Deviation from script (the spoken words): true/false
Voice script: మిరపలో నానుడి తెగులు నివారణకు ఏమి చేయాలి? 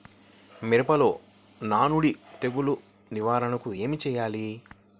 false